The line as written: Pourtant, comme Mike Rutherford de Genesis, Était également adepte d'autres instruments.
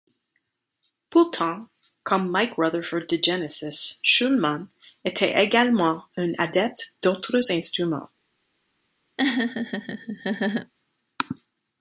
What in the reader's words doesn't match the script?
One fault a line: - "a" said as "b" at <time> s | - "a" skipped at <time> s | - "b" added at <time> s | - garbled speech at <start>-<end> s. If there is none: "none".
- "Shulman" added at 4.0 s
- "un" added at 6.2 s